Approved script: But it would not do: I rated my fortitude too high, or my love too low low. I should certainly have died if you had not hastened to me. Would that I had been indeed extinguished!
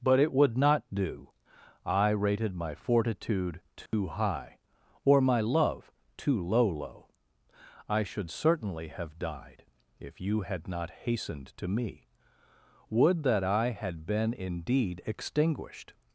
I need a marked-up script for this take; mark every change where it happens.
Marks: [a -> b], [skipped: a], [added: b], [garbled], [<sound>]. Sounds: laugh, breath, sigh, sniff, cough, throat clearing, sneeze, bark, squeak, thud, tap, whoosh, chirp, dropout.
But it would not do: I rated my fortitude too [dropout] high, or my love too low low. I should certainly have died if you had not hastened to me. Would that I had been indeed extinguished!